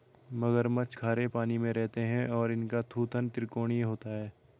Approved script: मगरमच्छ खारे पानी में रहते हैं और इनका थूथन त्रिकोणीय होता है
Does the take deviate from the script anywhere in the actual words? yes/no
no